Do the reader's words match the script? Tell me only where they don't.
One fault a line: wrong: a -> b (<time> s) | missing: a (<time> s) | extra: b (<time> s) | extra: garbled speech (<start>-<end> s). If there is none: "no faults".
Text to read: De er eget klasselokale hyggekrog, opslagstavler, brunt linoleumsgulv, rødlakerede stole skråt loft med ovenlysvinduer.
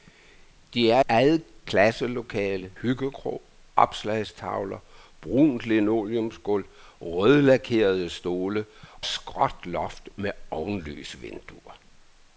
no faults